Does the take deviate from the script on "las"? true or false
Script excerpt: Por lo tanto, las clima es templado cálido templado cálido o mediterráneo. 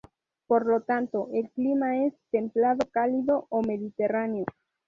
true